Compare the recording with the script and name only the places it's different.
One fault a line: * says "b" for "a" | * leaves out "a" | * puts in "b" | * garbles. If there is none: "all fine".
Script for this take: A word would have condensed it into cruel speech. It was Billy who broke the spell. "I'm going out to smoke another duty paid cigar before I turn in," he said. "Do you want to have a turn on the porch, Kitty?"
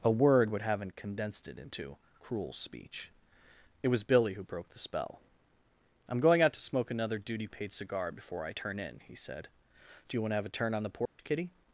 * says "haven't" for "have"